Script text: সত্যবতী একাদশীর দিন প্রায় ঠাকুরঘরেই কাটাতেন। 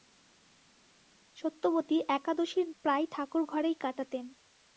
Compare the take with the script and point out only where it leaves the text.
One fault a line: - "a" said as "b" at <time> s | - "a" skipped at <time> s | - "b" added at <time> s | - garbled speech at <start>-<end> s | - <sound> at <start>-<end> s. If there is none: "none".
- "দিন" skipped at 2.7 s